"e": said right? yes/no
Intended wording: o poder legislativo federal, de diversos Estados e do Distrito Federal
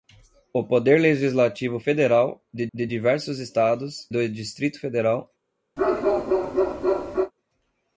no